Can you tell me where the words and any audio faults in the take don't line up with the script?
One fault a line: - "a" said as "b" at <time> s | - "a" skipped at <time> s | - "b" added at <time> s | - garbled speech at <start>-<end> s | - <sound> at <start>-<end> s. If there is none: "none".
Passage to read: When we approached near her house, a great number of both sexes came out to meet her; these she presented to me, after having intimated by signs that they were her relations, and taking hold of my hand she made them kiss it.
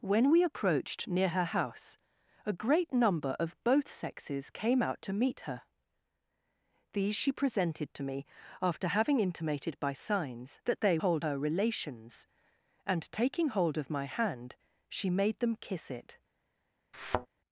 - "were" said as "hold" at 11.0 s
- thud at 16.9-17.3 s